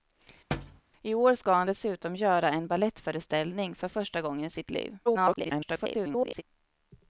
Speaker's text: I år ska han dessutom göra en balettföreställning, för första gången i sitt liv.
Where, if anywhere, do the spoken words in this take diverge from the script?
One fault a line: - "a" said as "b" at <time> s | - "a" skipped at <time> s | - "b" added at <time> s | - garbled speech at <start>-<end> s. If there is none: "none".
- garbled speech at 5.1-6.4 s